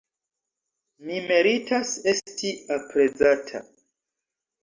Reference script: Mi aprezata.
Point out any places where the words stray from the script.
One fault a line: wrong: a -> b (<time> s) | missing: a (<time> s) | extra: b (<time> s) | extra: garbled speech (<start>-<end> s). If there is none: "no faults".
extra: meritas esti (1.3 s)